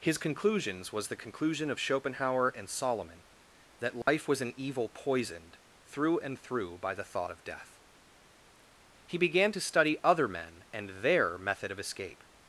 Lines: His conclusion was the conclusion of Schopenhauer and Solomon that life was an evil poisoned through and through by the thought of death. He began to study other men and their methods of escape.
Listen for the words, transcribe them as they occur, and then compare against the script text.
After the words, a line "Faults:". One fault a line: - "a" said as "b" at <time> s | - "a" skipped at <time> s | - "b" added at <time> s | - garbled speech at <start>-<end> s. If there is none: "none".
His conclusions was the conclusion of Schopenhauer and Solomon that life was an evil poisoned through and through by the thought of death. He began to study other men and their method of escape.
Faults:
- "conclusion" said as "conclusions" at 0.2 s
- "methods" said as "method" at 11.4 s